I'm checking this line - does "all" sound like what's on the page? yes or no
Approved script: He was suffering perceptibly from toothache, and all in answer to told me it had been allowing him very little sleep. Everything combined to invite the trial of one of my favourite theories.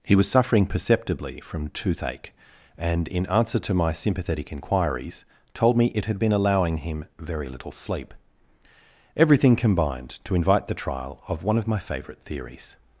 no